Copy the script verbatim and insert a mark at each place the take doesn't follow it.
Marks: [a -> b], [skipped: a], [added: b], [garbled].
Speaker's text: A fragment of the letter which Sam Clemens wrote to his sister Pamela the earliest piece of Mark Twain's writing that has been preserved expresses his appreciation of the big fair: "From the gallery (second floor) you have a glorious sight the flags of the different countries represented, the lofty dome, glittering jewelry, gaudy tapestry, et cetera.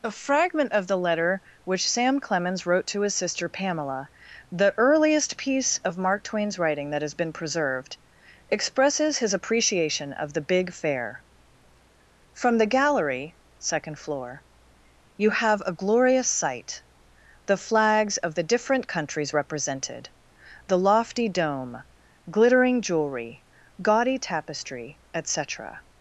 A fragment of the letter which Sam Clemens wrote to his sister Pamela the earliest piece of Mark Twain's writing that has been preserved expresses his appreciation of the big fair: "From the gallery (second floor) you have a glorious sight the flags of the different countries represented, the lofty dome, glittering jewelry, gaudy tapestry, et cetera.